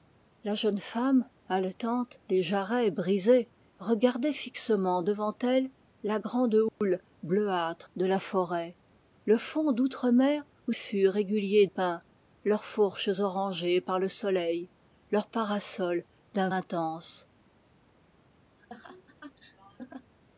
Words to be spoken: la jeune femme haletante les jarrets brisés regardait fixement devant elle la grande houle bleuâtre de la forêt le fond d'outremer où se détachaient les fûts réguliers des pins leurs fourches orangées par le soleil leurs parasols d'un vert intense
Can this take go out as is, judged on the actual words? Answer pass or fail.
fail